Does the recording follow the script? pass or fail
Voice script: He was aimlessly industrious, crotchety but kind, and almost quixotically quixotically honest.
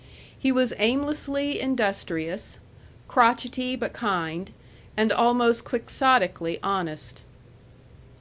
fail